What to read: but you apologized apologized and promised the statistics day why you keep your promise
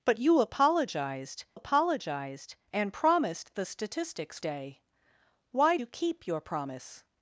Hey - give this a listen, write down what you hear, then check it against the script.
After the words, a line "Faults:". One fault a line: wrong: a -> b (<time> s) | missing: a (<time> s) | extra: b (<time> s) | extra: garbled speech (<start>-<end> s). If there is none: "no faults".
but you apologized apologized and promised the statistics day why you keep your promise
Faults:
no faults